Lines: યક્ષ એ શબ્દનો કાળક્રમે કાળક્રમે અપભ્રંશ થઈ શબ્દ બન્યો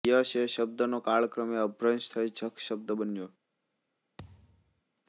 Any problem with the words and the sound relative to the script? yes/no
yes